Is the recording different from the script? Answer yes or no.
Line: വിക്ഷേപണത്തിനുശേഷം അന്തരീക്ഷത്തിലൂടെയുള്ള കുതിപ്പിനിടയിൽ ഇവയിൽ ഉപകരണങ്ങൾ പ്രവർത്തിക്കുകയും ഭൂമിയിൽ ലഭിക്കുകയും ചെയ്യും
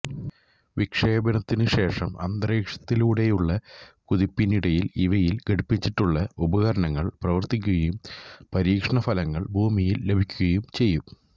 yes